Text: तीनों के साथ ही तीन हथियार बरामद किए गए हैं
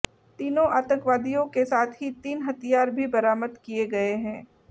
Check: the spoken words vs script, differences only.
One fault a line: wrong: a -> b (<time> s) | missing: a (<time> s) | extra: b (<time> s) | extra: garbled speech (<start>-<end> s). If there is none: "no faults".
extra: आतंकवादियों (0.7 s)
extra: भी (2.9 s)